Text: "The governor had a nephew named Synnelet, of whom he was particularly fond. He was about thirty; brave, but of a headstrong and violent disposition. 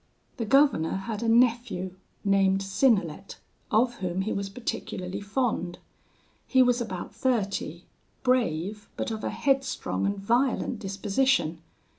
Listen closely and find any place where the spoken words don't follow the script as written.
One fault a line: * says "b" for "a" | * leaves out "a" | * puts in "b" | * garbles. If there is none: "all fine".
all fine